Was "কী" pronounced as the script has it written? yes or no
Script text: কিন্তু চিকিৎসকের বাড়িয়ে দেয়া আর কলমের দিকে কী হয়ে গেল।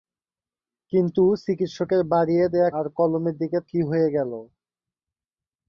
yes